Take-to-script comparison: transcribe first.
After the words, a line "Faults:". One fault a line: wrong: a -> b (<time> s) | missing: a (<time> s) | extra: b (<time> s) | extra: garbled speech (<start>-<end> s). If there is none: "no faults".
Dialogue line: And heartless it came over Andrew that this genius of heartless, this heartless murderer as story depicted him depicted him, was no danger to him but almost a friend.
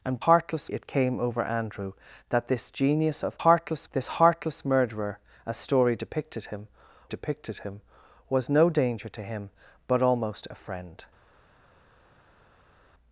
And heartless it came over Andrew that this genius of heartless, this heartless murderer as story depicted him depicted him, was no danger to him but almost a friend.
Faults:
no faults